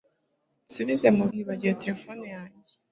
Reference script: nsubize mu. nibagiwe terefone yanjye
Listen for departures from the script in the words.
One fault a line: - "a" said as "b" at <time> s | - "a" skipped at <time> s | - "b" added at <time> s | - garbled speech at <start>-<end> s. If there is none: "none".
none